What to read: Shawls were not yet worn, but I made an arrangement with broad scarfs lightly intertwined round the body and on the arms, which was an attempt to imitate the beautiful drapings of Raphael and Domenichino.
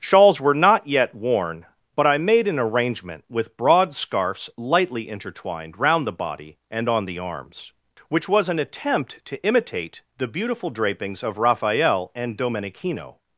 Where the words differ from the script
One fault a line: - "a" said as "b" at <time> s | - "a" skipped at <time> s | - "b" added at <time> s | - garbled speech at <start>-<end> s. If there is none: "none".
none